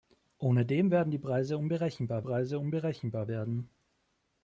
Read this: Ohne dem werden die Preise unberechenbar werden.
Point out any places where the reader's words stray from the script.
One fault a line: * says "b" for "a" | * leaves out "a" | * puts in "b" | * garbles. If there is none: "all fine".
* puts in "Preise unberechenbar"